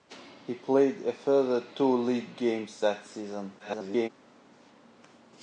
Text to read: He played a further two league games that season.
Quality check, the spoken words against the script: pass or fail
fail